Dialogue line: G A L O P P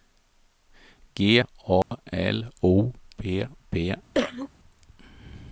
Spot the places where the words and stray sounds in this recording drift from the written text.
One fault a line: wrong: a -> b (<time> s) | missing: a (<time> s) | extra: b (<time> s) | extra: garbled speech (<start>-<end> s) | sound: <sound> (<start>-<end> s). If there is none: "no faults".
sound: dropout (1.8-1.9 s)
sound: cough (4.1-4.5 s)